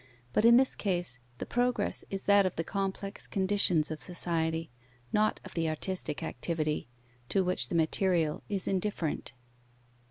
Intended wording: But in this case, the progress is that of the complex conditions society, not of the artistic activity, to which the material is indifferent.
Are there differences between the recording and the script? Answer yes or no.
yes